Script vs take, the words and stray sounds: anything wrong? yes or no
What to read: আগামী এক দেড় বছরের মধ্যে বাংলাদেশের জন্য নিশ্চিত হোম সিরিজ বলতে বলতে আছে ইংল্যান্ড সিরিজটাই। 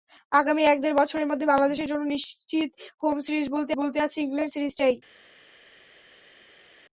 no